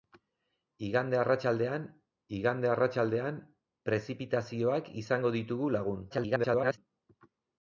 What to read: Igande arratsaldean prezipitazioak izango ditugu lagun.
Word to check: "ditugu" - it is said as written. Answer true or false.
true